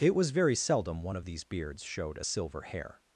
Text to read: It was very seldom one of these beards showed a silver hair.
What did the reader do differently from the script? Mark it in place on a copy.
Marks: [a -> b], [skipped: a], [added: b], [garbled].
It was very seldom one of these beards showed a silver hair.